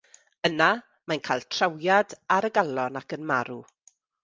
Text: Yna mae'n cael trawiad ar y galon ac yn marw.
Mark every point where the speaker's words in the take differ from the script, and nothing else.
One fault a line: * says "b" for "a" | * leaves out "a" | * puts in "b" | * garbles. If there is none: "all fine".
all fine